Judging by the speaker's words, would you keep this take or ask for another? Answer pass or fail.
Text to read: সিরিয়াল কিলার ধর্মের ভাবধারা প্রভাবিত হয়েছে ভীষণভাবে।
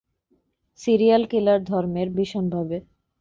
fail